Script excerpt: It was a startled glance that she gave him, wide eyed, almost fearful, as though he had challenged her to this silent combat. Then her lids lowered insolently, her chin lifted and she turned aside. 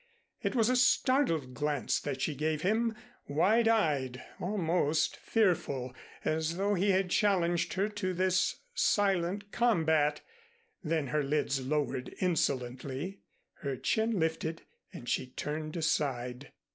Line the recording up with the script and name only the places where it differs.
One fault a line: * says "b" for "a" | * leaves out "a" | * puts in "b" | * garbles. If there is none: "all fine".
all fine